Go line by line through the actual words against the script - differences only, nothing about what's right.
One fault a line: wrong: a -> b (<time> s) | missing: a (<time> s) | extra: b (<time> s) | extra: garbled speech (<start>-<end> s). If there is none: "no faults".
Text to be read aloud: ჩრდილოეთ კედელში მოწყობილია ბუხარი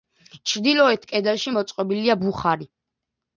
no faults